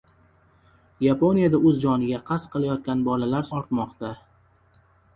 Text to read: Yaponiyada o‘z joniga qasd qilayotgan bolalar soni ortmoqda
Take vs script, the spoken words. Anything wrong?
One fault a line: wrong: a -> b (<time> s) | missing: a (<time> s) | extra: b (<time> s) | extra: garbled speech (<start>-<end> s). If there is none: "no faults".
missing: soni (3.5 s)